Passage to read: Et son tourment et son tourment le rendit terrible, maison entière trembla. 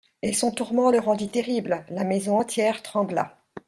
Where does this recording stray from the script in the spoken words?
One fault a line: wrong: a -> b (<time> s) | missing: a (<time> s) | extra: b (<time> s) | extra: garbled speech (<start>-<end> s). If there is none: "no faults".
missing: et son tourment (0.9 s)
extra: la (1.9 s)